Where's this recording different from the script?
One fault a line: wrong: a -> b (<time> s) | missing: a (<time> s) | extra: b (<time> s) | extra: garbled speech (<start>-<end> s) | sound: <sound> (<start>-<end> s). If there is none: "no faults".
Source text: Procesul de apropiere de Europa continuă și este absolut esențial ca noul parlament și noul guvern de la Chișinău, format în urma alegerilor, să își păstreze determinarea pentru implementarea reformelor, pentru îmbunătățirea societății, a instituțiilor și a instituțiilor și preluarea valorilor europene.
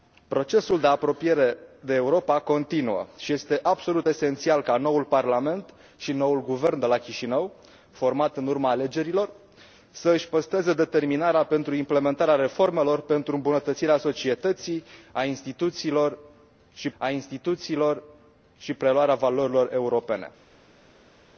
no faults